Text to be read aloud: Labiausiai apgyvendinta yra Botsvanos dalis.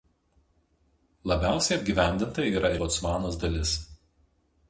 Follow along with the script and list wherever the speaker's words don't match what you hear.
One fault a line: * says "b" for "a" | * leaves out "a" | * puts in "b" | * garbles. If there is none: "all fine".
all fine